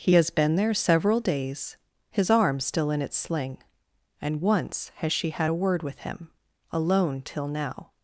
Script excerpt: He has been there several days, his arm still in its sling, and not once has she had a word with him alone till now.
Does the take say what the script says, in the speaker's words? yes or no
no